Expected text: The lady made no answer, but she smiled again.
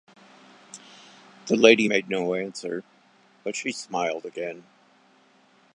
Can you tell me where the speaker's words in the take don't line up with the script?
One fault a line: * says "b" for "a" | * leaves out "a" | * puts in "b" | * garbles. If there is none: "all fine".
all fine